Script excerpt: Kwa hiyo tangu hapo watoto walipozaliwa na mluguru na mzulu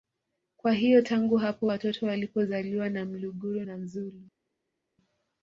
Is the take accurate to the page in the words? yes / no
yes